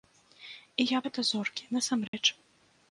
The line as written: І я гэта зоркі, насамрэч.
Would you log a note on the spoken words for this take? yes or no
no